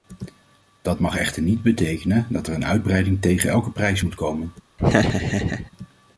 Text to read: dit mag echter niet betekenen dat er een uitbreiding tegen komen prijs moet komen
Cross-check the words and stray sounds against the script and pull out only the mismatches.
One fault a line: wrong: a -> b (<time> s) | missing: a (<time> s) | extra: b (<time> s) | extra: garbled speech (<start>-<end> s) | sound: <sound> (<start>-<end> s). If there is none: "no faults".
wrong: dit -> dat (0.8 s)
wrong: komen -> elke (3.5 s)
sound: laugh (4.8-5.7 s)